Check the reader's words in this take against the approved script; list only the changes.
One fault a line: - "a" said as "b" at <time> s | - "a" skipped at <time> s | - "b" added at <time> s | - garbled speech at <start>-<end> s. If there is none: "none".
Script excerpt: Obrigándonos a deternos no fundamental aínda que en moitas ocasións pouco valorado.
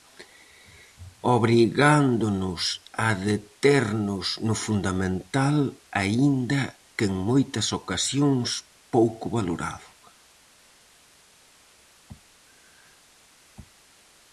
none